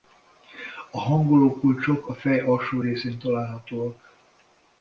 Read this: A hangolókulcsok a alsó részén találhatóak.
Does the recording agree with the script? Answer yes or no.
no